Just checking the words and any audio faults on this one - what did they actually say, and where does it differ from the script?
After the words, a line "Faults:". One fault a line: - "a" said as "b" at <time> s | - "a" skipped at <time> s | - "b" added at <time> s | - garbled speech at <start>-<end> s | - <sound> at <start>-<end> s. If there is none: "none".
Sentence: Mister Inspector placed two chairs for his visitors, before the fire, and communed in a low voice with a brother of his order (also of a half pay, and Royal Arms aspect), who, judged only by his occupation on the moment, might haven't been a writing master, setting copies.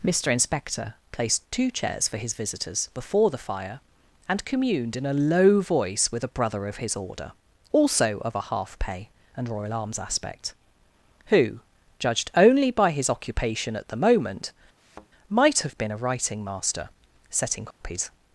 Mister Inspector placed two chairs for his visitors, before the fire, and communed in a low voice with a brother of his order (also of a half pay, and Royal Arms aspect), who, judged only by his occupation at the moment, might have been a writing master, setting copies.
Faults:
- "on" said as "at" at 13.8 s
- thud at 14.8-15.1 s
- "haven't" said as "have" at 15.6 s
- dropout at 17.7-17.8 s